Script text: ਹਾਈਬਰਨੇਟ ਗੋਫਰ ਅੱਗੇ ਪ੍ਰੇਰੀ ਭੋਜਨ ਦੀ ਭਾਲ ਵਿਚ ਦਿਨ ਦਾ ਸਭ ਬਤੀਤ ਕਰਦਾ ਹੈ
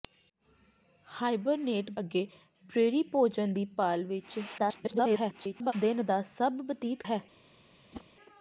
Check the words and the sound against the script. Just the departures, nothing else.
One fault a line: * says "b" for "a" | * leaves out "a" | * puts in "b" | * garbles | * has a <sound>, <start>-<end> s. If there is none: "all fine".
* leaves out "ਗੋਫਰ"
* garbles
* leaves out "ਕਰਦਾ"
* has a whoosh, 7.9-8.1 s